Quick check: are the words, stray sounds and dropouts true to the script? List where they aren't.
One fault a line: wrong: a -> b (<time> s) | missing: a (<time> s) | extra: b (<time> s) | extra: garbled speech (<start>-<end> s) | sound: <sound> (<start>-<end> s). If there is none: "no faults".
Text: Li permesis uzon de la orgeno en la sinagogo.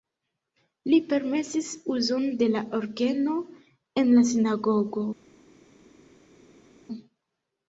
no faults